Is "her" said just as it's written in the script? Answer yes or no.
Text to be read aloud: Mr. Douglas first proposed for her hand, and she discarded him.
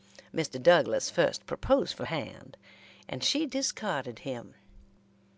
no